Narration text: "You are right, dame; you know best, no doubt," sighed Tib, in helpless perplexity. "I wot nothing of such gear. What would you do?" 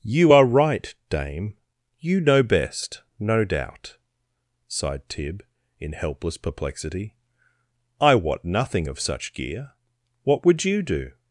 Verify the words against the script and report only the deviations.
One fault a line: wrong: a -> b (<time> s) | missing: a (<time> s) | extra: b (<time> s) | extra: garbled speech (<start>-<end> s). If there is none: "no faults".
no faults